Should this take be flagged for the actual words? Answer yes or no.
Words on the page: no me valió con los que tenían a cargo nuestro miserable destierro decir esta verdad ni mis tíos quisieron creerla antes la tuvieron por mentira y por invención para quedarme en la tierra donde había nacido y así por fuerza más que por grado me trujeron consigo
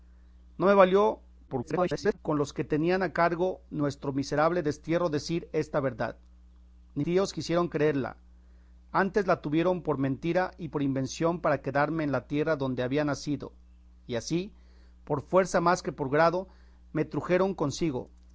yes